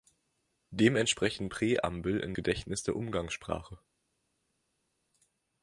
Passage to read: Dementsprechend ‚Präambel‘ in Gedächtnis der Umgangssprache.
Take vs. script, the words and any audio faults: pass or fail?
pass